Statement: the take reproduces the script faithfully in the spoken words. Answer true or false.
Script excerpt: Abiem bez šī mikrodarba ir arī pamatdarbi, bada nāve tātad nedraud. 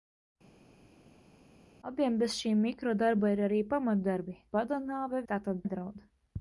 true